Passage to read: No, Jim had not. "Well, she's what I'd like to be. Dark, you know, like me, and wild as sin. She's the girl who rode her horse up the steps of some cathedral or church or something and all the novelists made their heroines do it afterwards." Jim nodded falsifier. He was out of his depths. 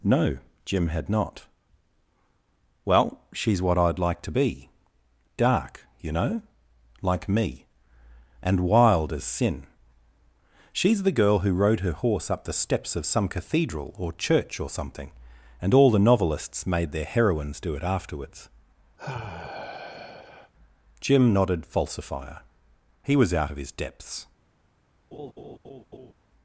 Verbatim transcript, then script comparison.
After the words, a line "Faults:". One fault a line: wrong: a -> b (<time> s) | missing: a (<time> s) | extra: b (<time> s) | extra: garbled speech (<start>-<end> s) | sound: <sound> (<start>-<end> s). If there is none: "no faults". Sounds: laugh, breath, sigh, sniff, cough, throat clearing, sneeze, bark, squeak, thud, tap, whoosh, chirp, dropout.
No, Jim had not. "Well, she's what I'd like to be. Dark, you know, like me, and wild as sin. She's the girl who rode her horse up the steps of some cathedral or church or something and all the novelists made their heroines do it afterwards." Jim nodded falsifier. He was out of his depths.
Faults:
sound: sigh (19.0-20.5 s)
sound: laugh (25.1-26.1 s)